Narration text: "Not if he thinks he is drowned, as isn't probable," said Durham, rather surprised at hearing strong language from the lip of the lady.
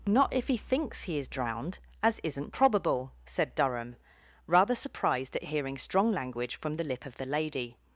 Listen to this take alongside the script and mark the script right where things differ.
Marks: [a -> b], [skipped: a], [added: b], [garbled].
"Not if he thinks he is drowned, as isn't probable," said Durham, rather surprised at hearing strong language from the lip of the lady.